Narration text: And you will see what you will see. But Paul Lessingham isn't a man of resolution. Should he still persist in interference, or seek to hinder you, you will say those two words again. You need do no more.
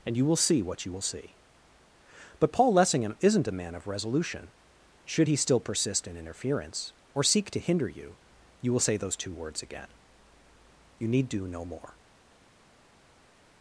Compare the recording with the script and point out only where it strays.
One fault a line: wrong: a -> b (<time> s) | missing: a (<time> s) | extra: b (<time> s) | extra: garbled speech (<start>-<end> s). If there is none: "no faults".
no faults